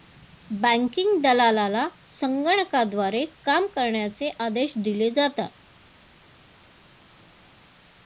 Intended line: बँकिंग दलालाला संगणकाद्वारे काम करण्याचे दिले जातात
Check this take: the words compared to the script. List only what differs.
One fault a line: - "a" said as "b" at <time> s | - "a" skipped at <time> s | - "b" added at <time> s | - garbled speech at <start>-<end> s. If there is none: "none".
- "आदेश" added at 4.4 s